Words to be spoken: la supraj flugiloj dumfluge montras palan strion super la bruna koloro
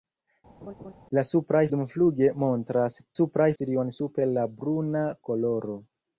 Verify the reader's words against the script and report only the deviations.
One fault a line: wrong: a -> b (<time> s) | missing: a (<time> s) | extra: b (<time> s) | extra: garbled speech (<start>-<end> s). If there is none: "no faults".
missing: flugiloj (1.6 s)
wrong: palan -> supraj (3.2 s)